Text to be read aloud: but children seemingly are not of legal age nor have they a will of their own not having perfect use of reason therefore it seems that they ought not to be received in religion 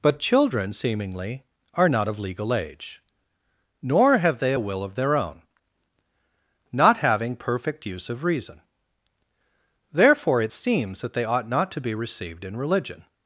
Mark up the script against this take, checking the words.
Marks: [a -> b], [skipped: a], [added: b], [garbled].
but children seemingly are not of legal age nor have they a will of their own not having perfect use of reason therefore it seems that they ought not to be received in religion